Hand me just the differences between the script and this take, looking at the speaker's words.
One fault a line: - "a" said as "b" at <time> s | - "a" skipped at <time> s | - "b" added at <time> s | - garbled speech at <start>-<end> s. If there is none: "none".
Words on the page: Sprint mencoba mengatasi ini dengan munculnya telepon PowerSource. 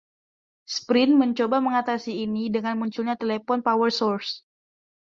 none